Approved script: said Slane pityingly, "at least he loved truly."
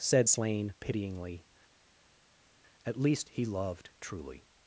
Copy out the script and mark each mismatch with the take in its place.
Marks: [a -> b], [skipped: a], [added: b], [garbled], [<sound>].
said Slane pityingly, "at least he loved truly."